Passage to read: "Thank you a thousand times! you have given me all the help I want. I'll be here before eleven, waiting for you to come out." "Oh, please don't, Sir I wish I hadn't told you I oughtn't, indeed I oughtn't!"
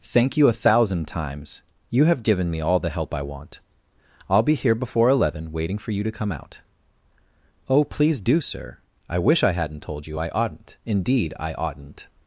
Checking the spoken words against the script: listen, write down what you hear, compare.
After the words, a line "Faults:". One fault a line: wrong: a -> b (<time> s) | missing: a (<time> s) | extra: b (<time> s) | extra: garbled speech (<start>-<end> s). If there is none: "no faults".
"Thank you a thousand times! you have given me all the help I want. I'll be here before eleven, waiting for you to come out." "Oh, please do, Sir I wish I hadn't told you I oughtn't, indeed I oughtn't!"
Faults:
wrong: don't -> do (8.2 s)